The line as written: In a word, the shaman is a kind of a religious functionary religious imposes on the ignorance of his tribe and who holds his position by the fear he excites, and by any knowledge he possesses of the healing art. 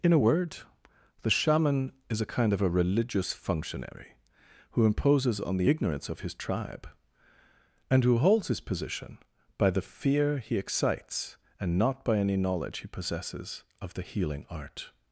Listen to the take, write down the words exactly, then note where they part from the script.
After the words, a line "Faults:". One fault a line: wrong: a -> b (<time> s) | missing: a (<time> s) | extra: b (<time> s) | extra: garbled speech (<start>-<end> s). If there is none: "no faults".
In a word, the shaman is a kind of a religious functionary who imposes on the ignorance of his tribe and who holds his position by the fear he excites, and not by any knowledge he possesses of the healing art.
Faults:
wrong: religious -> who (4.7 s)
extra: not (11.8 s)